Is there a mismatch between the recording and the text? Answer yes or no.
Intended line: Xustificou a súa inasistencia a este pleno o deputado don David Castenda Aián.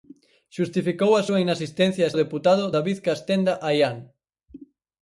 yes